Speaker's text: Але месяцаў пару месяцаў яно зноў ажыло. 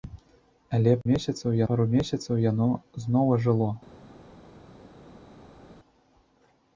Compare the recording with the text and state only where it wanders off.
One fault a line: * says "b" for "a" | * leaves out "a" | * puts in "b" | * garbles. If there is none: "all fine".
all fine